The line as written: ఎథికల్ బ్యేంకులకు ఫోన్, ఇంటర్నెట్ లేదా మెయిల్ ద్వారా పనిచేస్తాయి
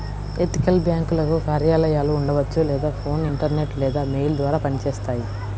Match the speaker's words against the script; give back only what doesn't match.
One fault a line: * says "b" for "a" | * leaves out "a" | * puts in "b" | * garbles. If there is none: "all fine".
* puts in "కార్యాలయాలు ఉండవచ్చు లేదా"